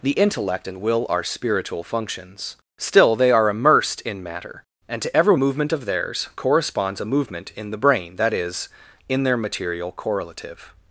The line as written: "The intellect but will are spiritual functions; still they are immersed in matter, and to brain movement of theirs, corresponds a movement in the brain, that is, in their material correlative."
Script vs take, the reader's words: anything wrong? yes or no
yes